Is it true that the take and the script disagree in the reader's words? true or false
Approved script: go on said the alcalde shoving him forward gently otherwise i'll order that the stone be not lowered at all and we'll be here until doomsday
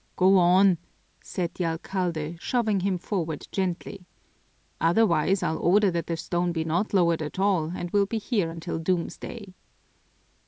false